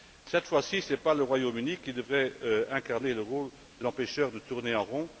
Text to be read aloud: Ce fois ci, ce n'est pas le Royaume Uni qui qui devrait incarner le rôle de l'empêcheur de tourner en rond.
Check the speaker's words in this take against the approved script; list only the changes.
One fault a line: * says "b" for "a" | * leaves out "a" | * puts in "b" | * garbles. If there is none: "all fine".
* says "Cette" for "Ce"
* leaves out "qui"